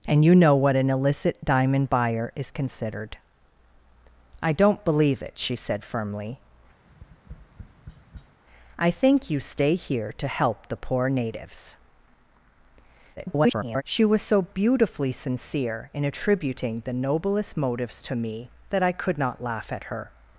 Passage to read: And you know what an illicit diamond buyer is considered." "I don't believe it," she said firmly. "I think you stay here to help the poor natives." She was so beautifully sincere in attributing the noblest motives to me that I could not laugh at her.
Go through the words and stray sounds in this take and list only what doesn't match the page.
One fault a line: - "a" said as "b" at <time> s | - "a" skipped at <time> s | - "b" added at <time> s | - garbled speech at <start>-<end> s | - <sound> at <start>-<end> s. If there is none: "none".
- tap at 6.9-8.4 s
- garbled speech at 13.2-13.8 s